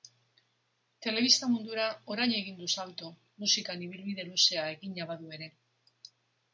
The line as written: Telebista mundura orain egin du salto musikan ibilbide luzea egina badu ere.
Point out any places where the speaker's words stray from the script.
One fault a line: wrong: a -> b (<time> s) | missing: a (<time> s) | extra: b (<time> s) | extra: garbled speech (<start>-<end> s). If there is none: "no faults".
no faults